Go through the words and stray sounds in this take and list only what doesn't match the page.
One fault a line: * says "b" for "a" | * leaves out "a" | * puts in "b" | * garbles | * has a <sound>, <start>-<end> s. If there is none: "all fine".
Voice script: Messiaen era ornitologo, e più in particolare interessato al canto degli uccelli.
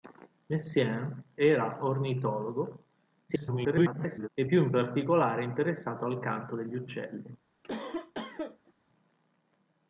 * garbles
* has a cough, 7.6-8.7 s